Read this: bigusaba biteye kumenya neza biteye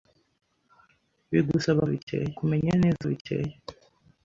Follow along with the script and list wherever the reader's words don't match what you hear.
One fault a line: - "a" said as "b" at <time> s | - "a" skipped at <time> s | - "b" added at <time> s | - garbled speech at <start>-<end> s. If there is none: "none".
none